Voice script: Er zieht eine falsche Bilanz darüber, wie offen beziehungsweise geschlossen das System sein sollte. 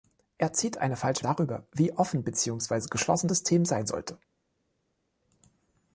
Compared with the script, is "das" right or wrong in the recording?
wrong